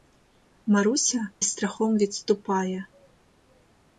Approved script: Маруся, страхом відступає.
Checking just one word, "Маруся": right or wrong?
right